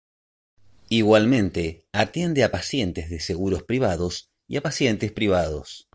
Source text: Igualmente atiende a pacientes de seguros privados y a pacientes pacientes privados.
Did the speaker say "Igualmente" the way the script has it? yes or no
yes